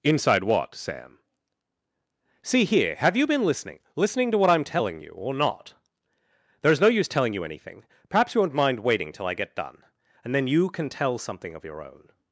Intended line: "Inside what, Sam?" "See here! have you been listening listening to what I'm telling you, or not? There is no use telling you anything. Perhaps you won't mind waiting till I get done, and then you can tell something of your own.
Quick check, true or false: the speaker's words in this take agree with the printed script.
true